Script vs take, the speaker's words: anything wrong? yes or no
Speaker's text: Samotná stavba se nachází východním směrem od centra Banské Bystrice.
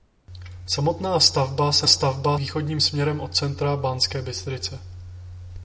yes